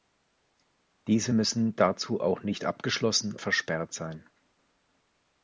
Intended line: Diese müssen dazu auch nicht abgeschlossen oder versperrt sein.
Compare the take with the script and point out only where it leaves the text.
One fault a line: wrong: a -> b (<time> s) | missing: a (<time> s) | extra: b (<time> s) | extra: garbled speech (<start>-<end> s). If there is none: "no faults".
missing: oder (3.4 s)